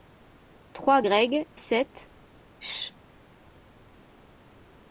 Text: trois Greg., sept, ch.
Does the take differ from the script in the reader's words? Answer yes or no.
no